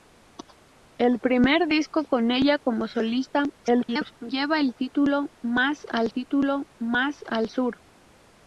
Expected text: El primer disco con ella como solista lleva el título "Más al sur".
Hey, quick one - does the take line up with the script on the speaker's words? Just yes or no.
no